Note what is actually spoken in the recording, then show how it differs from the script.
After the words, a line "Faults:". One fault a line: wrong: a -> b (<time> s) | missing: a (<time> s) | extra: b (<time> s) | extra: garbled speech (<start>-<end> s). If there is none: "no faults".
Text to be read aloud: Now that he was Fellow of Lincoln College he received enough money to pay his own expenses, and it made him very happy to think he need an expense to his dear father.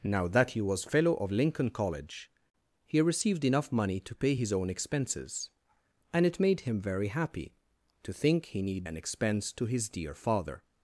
Now that he was Fellow of Lincoln College he received enough money to pay his own expenses, and it made him very happy to think he need an expense to his dear father.
Faults:
no faults